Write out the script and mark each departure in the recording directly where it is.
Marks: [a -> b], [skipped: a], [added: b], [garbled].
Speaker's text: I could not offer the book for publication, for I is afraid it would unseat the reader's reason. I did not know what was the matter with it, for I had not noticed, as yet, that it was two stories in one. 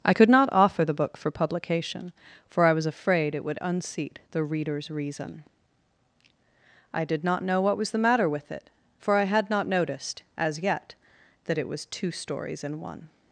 I could not offer the book for publication, for I [is -> was] afraid it would unseat the reader's reason. I did not know what was the matter with it, for I had not noticed, as yet, that it was two stories in one.